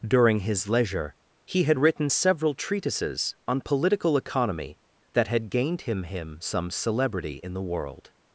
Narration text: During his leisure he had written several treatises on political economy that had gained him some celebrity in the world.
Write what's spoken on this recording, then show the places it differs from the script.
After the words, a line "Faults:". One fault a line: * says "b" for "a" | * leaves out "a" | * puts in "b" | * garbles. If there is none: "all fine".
During his leisure he had written several treatises on political economy that had gained him him some celebrity in the world.
Faults:
* puts in "him"